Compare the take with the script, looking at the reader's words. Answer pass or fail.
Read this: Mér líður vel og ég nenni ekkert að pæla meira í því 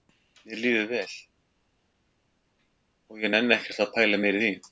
pass